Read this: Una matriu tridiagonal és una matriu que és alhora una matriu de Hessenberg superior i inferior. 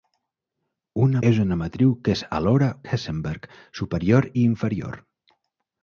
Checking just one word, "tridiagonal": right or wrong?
wrong